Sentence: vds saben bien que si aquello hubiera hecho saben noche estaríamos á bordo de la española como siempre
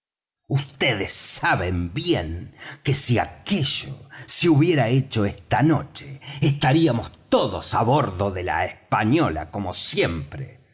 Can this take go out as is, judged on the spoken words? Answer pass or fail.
fail